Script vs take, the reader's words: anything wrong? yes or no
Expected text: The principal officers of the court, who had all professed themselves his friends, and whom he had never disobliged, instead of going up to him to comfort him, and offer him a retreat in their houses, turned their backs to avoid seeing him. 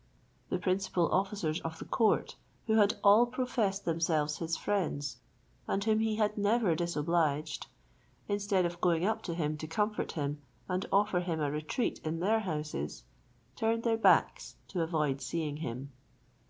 no